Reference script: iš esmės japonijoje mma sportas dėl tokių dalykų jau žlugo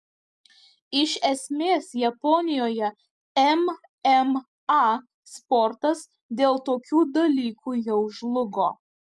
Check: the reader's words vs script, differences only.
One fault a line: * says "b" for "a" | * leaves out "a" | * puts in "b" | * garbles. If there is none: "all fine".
all fine